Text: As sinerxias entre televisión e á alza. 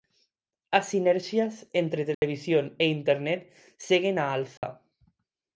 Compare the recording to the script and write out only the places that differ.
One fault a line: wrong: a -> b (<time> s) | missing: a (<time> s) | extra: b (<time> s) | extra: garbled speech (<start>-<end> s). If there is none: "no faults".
extra: internet seguen (3.0 s)